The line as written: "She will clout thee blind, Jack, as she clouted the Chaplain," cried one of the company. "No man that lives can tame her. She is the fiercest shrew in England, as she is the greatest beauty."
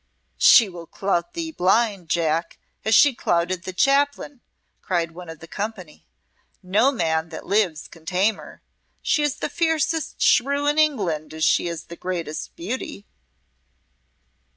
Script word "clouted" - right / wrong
right